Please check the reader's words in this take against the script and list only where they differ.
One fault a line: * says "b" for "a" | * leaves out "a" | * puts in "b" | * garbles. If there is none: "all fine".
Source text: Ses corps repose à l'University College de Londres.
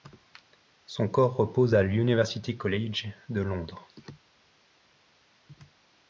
* says "Son" for "Ses"